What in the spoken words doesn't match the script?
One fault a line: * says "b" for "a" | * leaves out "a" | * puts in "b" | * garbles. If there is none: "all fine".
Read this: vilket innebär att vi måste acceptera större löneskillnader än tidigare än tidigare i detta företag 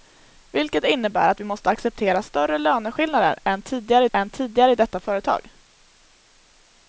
all fine